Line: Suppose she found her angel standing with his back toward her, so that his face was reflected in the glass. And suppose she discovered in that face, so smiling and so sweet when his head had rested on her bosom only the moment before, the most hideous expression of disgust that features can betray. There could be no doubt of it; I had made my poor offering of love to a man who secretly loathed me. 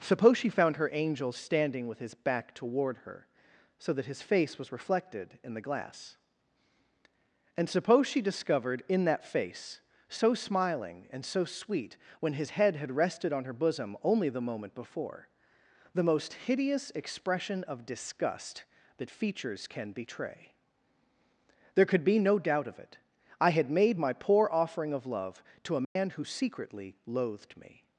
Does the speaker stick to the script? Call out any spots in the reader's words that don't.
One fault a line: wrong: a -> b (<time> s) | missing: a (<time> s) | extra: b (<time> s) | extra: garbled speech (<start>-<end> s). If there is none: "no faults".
no faults